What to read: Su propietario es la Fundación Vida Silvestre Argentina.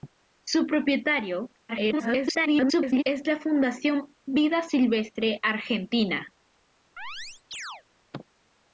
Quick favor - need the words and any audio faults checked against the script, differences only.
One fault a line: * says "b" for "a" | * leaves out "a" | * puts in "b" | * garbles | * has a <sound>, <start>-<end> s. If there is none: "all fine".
* garbles
* has a chirp, 7.0-7.8 s